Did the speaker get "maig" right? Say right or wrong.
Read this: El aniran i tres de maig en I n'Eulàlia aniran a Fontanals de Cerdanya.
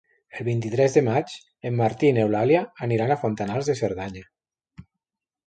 right